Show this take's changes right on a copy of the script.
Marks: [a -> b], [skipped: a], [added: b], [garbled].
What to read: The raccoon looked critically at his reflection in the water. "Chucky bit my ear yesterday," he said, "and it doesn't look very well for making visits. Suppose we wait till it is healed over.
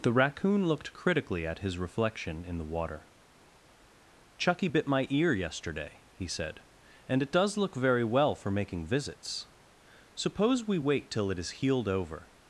The raccoon looked critically at his reflection in the water. "Chucky bit my ear yesterday," he said, "and it [doesn't -> does] look very well for making visits. Suppose we wait till it is healed over.